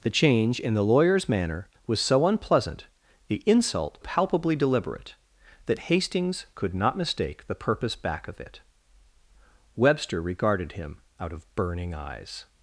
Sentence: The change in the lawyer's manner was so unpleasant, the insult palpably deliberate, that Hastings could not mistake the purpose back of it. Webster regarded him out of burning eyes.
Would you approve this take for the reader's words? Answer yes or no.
yes